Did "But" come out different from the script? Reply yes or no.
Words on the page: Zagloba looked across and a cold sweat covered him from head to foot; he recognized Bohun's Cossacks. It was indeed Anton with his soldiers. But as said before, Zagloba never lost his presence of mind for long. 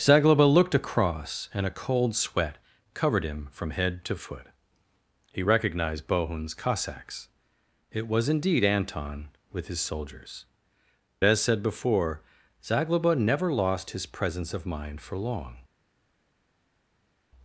yes